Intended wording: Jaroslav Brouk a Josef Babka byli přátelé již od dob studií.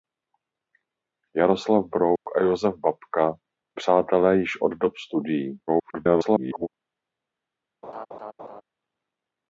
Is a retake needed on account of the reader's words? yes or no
yes